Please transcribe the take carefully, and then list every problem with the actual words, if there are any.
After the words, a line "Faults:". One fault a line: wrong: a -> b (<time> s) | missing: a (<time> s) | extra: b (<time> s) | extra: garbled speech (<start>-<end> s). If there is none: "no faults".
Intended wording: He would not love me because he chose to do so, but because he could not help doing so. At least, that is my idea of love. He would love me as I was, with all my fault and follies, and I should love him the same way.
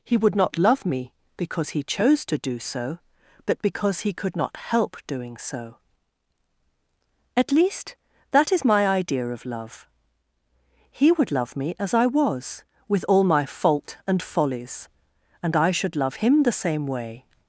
He would not love me because he chose to do so, but because he could not help doing so. At least, that is my idea of love. He would love me as I was, with all my fault and follies, and I should love him the same way.
Faults:
no faults